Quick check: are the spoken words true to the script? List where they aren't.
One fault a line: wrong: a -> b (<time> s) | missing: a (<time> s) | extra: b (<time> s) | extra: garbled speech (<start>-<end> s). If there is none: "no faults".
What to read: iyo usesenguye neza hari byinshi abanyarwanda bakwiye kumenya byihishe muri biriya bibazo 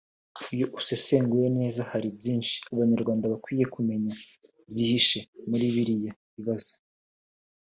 no faults